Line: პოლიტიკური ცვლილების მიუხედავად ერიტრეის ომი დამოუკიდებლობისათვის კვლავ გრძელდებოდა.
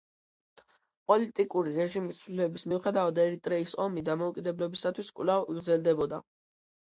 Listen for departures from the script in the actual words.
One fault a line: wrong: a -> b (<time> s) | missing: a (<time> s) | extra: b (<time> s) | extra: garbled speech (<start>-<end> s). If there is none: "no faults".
extra: რეჟიმის (1.8 s)